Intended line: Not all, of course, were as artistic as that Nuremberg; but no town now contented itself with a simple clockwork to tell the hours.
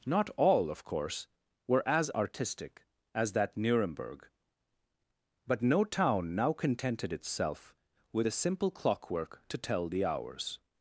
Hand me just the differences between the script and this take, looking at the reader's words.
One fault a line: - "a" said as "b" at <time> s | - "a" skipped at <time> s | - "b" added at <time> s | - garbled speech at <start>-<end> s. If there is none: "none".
none